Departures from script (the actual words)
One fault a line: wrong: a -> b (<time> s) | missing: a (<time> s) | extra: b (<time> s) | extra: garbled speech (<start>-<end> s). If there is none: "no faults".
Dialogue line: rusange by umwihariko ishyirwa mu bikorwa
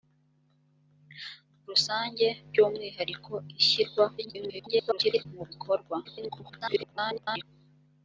extra: garbled speech (4.2-5.3 s)
extra: garbled speech (6.0-7.4 s)